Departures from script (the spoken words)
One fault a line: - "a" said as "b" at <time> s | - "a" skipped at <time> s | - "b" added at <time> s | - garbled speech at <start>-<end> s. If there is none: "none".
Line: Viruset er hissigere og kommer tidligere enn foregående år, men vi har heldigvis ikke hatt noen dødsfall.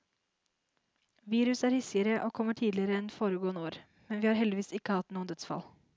none